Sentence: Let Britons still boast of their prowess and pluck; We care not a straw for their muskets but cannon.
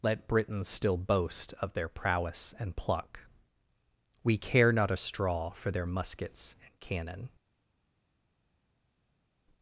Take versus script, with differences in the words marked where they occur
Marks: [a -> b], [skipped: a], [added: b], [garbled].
Let Britons still boast of their prowess and pluck; We care not a straw for their muskets [but -> and] cannon.